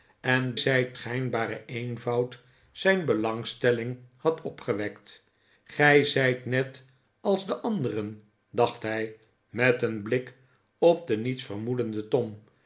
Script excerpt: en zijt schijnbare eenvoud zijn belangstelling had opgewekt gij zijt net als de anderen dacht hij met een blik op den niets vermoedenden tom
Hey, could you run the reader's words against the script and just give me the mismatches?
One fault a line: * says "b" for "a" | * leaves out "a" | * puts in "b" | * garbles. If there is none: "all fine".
all fine